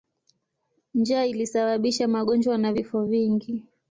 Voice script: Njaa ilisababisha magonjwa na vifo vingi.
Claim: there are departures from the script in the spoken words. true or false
false